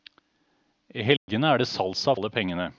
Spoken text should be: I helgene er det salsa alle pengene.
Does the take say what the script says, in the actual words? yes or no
yes